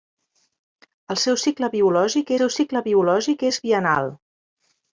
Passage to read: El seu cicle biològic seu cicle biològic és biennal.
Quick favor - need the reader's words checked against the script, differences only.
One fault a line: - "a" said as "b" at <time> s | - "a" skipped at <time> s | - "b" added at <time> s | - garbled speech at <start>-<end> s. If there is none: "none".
none